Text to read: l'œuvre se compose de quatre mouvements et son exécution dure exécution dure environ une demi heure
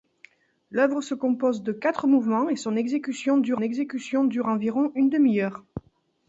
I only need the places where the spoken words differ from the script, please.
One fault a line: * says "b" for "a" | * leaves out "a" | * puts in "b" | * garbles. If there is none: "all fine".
all fine